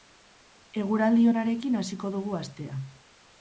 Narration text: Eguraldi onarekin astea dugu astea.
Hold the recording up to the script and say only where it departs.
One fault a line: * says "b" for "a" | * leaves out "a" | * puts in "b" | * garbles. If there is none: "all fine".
* says "hasiko" for "astea"